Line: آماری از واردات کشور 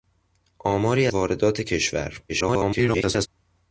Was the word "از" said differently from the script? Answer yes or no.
yes